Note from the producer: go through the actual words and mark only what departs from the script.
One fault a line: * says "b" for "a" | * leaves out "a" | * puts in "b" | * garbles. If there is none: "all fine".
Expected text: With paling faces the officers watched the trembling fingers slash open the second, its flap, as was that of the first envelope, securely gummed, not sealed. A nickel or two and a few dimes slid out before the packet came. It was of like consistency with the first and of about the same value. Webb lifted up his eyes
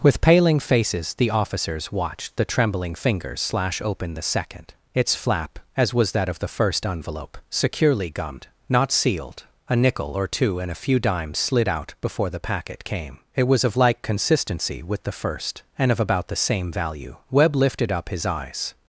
all fine